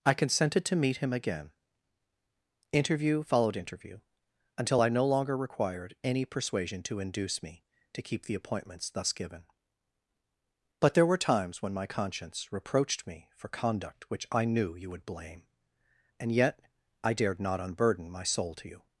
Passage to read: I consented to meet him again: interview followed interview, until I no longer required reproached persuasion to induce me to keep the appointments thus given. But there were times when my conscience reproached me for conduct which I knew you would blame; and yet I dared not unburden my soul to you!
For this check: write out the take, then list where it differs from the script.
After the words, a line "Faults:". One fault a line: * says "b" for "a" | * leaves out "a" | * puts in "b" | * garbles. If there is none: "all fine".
I consented to meet him again: interview followed interview, until I no longer required any persuasion to induce me to keep the appointments thus given. But there were times when my conscience reproached me for conduct which I knew you would blame; and yet I dared not unburden my soul to you!
Faults:
* says "any" for "reproached"